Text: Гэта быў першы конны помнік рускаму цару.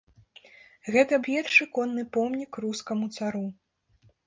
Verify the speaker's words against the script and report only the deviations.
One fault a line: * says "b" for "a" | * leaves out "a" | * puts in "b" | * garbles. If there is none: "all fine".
* leaves out "быў"